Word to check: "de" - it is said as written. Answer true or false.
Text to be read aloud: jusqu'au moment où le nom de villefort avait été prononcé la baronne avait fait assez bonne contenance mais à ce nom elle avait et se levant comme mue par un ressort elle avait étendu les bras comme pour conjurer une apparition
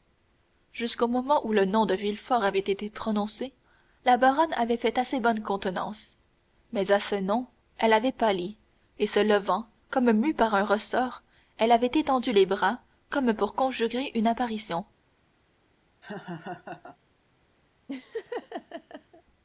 true